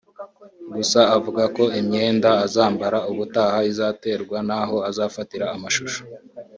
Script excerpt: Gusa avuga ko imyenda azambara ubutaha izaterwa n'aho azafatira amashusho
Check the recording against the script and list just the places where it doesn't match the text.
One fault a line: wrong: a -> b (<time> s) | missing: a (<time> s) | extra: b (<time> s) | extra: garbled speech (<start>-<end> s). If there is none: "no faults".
no faults